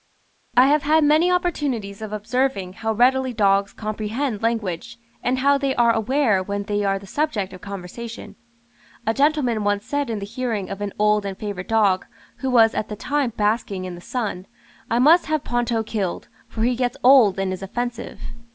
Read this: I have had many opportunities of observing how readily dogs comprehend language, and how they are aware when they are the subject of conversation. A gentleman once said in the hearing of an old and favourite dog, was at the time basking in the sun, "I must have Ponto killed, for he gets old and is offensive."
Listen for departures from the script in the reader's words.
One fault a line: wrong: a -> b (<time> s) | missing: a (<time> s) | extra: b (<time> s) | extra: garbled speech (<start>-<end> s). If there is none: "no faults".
extra: who (12.4 s)